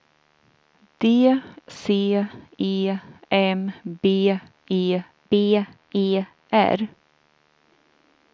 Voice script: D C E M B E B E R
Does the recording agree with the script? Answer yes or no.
yes